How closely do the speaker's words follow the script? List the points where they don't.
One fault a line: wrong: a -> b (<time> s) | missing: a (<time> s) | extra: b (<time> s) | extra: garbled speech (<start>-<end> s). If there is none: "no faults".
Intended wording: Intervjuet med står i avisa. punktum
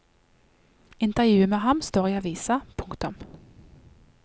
extra: ham (1.6 s)